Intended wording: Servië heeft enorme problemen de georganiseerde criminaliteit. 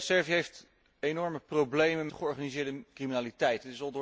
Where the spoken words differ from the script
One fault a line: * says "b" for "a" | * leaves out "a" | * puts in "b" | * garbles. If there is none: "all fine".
all fine